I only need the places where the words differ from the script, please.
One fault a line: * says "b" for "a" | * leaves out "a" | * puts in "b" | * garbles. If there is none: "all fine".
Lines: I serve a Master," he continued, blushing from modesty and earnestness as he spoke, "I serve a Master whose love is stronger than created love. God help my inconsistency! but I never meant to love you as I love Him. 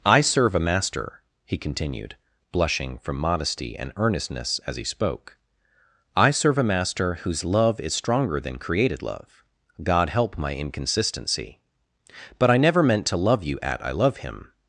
* says "at" for "as"